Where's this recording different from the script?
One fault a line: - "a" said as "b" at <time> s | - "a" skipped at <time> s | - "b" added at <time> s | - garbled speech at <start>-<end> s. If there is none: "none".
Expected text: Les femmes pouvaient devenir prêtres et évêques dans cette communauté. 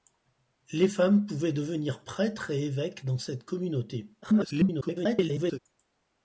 - garbled speech at 4.2-5.6 s